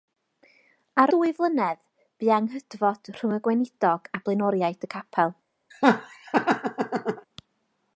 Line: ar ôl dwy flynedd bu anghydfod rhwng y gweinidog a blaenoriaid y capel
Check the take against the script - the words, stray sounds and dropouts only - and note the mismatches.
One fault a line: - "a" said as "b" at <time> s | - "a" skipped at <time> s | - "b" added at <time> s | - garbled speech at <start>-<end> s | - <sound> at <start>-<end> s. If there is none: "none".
- "ôl" skipped at 1.1 s
- laugh at 5.7-7.3 s